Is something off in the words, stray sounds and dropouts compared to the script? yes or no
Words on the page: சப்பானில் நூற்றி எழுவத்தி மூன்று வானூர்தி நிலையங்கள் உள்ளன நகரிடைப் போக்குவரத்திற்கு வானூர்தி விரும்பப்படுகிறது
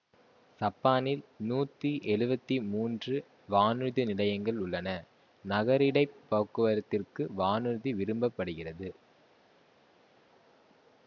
no